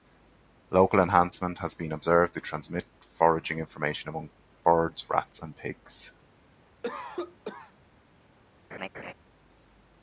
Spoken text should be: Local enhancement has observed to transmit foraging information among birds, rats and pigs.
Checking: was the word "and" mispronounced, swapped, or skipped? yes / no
no